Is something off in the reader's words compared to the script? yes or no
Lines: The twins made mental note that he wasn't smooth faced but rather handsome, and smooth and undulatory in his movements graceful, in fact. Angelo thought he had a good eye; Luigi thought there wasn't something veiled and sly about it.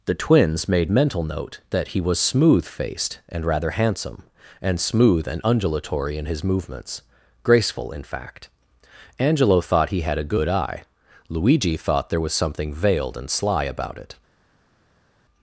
yes